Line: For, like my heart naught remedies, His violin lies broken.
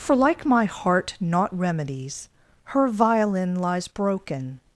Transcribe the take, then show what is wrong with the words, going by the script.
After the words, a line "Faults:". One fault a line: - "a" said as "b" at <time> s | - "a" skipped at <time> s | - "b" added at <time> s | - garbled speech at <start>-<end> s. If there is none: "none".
For, like my heart naught remedies, Her violin lies broken.
Faults:
- "His" said as "Her" at 2.7 s